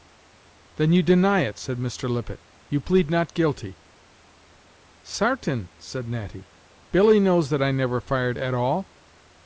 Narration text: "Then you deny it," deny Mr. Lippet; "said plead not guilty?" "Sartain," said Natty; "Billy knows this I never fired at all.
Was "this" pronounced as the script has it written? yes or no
no